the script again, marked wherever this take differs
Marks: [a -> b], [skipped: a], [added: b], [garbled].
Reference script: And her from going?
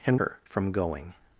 And her from going?